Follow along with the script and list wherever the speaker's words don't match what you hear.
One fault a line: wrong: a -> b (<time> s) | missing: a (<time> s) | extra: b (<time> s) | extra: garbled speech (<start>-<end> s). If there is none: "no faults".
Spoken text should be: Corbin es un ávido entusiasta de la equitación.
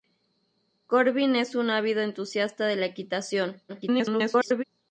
extra: garbled speech (3.7-4.6 s)